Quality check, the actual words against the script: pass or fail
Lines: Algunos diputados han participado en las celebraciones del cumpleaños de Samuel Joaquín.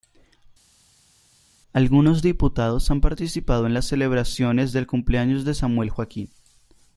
pass